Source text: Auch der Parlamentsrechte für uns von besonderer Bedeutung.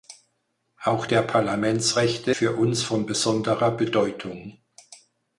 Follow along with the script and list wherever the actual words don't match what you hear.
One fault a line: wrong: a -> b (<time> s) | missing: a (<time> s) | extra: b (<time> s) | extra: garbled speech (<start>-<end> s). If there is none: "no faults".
no faults